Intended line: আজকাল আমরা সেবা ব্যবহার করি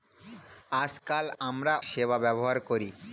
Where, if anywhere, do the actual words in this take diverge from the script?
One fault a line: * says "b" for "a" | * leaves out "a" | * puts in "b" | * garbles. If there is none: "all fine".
all fine